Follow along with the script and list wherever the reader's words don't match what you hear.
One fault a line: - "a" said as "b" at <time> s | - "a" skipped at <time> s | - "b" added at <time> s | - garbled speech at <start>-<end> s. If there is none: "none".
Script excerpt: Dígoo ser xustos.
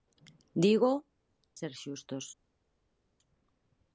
none